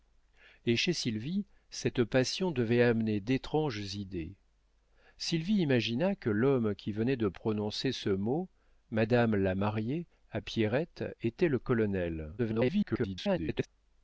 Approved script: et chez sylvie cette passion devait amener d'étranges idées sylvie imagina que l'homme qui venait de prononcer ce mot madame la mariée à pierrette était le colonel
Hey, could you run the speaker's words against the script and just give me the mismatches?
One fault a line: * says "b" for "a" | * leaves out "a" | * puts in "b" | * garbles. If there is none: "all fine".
* garbles